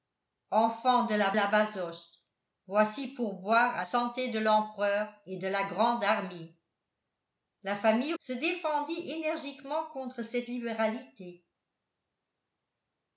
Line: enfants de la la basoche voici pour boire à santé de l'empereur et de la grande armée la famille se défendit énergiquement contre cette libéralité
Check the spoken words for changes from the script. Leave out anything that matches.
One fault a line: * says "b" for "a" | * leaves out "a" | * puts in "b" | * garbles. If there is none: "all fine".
all fine